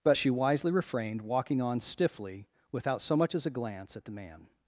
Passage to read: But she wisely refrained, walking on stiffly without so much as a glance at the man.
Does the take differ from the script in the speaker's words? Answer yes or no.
no